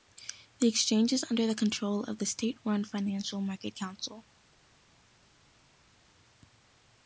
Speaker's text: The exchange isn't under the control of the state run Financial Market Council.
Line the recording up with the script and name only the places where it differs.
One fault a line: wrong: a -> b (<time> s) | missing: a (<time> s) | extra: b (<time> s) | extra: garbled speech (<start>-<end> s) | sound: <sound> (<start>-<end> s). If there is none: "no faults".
wrong: isn't -> is (1.1 s)